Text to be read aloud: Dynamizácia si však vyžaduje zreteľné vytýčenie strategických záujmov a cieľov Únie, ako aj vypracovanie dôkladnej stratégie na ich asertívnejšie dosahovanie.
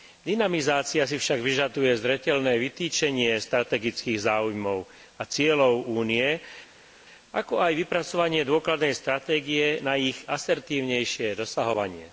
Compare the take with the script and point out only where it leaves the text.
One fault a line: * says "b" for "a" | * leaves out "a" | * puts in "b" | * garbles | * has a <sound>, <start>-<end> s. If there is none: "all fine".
all fine